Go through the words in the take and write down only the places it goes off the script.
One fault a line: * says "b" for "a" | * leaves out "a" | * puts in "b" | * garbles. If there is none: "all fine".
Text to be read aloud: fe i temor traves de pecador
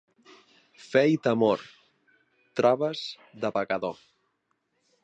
all fine